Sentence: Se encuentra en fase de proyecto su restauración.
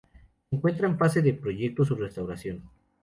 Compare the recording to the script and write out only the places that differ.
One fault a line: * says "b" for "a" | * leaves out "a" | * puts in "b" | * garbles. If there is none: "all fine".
all fine